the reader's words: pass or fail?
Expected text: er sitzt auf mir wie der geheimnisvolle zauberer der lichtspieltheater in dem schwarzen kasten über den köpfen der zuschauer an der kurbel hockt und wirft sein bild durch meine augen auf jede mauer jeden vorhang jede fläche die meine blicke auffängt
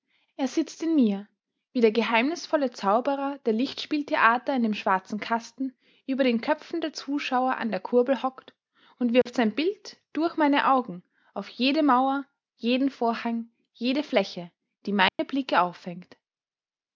fail